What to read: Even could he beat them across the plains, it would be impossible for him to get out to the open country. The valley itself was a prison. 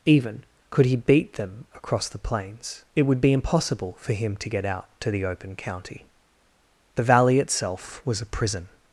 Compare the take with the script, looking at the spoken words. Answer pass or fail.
fail